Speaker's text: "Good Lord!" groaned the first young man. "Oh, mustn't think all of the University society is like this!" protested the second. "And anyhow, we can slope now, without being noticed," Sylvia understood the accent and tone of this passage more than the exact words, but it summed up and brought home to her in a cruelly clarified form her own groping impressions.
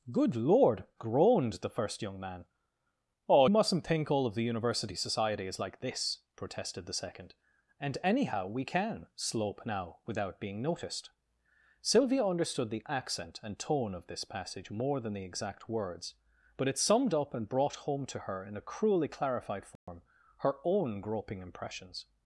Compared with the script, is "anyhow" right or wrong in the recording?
right